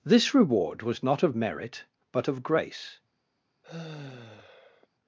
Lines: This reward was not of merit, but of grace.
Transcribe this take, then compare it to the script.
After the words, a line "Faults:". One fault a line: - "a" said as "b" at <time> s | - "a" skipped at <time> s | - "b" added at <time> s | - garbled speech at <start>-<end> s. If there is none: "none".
This reward was not of merit, but of grace.
Faults:
none